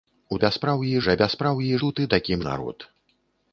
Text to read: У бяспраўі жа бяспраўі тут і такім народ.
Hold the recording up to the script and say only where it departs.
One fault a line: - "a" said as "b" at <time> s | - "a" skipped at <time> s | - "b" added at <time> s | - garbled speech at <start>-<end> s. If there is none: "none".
none